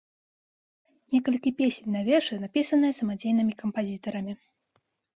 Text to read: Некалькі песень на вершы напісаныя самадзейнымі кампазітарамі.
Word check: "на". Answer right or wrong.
right